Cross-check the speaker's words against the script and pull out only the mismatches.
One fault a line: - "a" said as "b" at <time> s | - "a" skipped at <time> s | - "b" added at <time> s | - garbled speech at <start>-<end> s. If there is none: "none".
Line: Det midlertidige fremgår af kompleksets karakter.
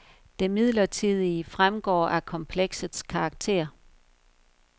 none